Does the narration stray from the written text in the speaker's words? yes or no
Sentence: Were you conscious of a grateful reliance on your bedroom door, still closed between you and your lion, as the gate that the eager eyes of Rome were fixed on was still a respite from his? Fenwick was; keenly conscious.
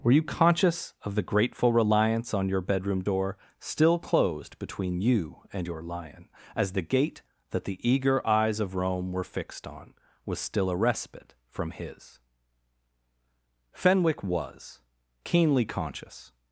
yes